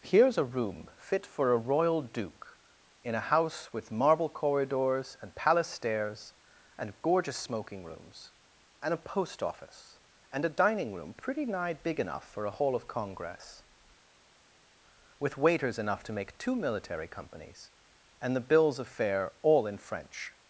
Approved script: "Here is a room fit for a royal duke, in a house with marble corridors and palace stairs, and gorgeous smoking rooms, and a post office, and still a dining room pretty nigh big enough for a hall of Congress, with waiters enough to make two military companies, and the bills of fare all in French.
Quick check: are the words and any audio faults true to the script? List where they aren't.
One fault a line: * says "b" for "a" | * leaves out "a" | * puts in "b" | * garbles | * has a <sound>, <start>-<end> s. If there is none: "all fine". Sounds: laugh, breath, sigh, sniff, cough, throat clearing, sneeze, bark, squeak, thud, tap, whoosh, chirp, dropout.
* leaves out "still"